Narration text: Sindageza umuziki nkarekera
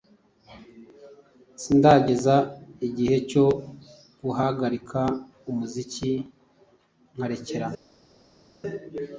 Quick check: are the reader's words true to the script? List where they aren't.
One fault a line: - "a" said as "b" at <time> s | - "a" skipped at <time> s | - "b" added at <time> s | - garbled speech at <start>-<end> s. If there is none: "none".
- "igihe cyo guhagarika" added at 2.9 s